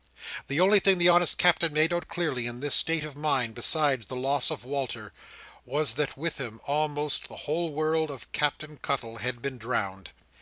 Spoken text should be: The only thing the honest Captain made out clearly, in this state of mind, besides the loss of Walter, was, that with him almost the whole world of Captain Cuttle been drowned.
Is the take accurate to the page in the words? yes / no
no